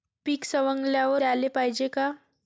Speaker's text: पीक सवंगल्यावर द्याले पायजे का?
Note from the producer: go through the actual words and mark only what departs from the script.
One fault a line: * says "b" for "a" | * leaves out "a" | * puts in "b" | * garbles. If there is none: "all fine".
all fine